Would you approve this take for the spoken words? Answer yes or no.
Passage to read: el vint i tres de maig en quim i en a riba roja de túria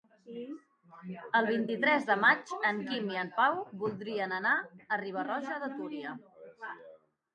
no